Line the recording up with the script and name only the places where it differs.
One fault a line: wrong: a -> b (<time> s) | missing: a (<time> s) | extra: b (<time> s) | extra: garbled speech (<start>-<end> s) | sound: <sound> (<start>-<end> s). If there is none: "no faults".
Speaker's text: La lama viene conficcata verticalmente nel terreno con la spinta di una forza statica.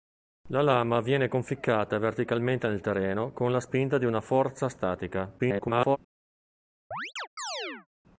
extra: garbled speech (5.4-6.0 s)
sound: chirp (6.9-7.9 s)